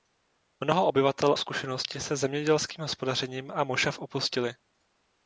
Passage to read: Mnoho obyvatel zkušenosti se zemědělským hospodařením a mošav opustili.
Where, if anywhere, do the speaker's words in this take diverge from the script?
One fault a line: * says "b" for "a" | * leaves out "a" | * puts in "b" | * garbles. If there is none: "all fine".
all fine